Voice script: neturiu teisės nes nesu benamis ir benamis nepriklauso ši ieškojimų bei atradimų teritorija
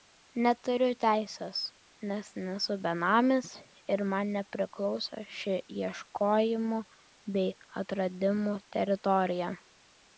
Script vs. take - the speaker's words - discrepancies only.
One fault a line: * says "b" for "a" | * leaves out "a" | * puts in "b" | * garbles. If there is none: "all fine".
* says "man" for "benamis"